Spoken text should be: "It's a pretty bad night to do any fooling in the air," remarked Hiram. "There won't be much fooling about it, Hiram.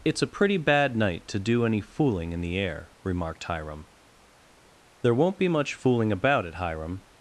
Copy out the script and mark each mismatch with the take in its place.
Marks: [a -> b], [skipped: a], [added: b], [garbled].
"It's a pretty bad night to do any fooling in the air," remarked Hiram. "There won't be much fooling about it, Hiram.